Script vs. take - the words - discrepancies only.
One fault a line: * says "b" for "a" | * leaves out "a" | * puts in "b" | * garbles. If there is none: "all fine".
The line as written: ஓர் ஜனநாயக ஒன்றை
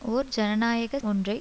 all fine